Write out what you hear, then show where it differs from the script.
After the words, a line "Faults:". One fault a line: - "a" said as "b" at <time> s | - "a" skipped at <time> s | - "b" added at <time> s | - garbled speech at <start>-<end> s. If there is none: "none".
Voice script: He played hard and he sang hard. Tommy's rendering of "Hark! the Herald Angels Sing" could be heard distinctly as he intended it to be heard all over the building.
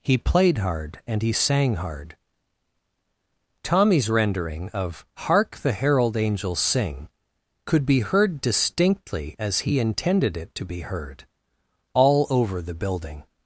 He played hard and he sang hard. Tommy's rendering of "Hark! the Herald Angels Sing" could be heard distinctly as he intended it to be heard all over the building.
Faults:
none